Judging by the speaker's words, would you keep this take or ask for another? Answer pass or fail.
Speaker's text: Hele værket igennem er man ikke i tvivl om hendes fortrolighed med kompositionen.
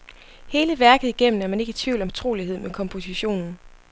fail